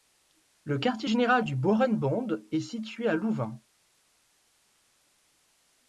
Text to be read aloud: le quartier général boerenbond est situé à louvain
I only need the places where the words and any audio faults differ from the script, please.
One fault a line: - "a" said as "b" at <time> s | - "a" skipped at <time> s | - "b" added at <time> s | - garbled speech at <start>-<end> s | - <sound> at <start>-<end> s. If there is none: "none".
- "du" added at 1.4 s